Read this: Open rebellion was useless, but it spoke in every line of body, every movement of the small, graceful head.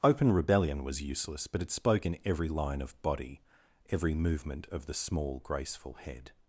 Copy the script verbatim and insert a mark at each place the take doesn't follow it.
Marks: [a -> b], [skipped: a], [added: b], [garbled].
Open rebellion was useless, but it spoke in every line of body, every movement of the small, graceful head.